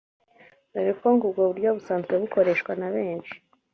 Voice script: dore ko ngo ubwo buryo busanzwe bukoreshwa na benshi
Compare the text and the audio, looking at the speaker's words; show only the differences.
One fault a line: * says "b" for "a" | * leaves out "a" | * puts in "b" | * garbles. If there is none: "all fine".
all fine